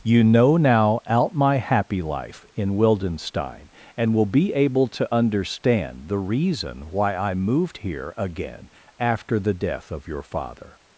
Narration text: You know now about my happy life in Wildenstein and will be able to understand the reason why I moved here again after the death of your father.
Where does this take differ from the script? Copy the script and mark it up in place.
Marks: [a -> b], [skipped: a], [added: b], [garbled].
You know now [about -> out] my happy life in Wildenstein and will be able to understand the reason why I moved here again after the death of your father.